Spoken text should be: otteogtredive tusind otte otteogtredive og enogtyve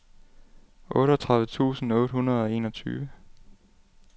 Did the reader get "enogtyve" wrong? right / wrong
right